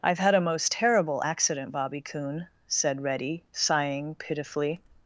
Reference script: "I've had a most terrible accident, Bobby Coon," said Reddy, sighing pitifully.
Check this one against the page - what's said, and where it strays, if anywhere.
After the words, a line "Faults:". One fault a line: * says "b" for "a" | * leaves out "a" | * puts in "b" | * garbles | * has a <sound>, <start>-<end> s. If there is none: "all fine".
"I've had a most terrible accident, Bobby Coon," said Reddy, sighing pitifully.
Faults:
all fine